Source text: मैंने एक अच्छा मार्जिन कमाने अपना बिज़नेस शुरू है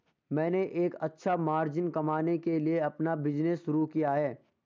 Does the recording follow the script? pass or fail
fail